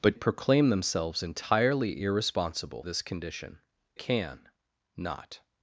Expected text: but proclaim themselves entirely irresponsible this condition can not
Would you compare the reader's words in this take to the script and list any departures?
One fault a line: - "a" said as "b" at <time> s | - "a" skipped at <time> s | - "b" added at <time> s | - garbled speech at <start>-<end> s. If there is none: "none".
none